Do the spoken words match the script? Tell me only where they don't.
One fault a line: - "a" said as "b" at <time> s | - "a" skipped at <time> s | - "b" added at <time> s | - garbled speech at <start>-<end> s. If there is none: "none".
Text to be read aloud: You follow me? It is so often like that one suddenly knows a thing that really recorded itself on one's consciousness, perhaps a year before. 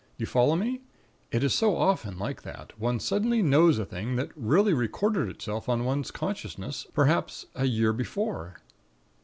none